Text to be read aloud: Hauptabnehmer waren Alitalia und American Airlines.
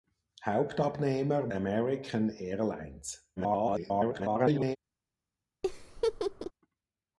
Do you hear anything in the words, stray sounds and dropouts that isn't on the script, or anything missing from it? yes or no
yes